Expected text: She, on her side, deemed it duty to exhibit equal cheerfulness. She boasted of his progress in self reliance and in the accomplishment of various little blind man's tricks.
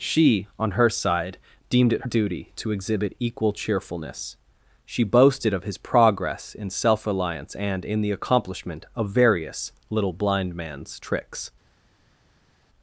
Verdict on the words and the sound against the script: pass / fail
pass